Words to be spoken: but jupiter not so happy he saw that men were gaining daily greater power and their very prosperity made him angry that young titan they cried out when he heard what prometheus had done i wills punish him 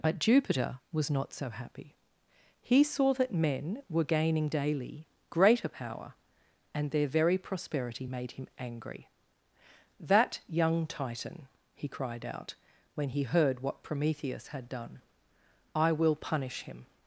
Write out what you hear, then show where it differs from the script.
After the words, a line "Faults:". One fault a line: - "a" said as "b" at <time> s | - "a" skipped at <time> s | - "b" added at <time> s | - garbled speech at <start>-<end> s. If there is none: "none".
but jupiter was not so happy he saw that men were gaining daily greater power and their very prosperity made him angry that young titan he cried out when he heard what prometheus had done i will punish him
Faults:
- "was" added at 0.9 s
- "they" said as "he" at 11.7 s
- "wills" said as "will" at 15.9 s